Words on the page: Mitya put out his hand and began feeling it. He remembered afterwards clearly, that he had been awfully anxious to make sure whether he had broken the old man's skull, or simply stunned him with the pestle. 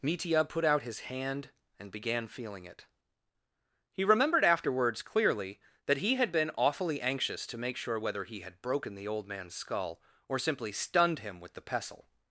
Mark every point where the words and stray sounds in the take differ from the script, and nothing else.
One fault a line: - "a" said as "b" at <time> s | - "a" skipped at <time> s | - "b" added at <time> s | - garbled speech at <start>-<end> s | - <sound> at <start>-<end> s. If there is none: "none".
none